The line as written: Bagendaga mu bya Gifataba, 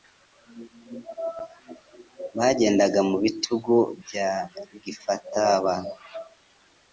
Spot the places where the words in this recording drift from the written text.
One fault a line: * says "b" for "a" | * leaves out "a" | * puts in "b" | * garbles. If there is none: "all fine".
* puts in "bitugu"